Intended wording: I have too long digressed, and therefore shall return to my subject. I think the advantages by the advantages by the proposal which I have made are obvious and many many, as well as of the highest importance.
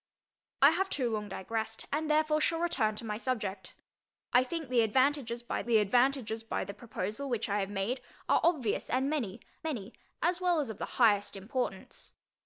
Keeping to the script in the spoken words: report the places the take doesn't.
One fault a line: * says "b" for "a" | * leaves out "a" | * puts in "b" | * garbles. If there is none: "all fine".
all fine